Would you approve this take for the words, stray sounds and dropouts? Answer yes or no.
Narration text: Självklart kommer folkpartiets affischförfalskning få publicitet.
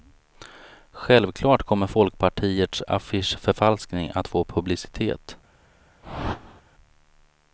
no